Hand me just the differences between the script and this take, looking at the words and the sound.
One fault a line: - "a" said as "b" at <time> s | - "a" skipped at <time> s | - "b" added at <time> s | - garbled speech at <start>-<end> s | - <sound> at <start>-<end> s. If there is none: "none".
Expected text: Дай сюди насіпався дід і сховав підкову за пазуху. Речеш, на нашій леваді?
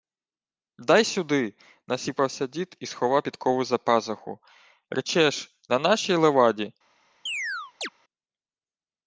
- chirp at 7.3-7.9 s